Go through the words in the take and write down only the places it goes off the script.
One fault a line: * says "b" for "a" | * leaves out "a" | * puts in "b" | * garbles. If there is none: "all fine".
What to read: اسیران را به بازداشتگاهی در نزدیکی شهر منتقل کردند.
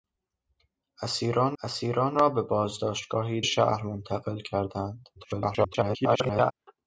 * puts in "اسیران"
* leaves out "در نزدیکی"
* garbles